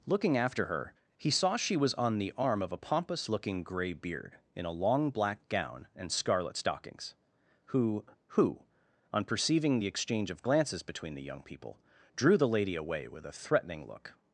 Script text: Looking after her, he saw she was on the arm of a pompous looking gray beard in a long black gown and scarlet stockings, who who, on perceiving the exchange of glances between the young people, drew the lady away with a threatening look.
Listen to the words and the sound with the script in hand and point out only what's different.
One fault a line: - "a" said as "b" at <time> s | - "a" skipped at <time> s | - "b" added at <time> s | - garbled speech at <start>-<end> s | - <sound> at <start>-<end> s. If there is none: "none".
none